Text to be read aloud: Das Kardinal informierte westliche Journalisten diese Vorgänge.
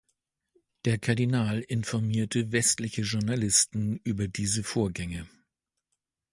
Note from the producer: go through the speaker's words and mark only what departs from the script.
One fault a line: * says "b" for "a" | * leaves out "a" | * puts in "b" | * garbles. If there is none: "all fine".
* says "Der" for "Das"
* puts in "über"